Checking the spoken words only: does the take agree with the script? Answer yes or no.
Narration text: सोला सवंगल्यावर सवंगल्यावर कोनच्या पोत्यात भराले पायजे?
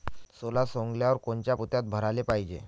no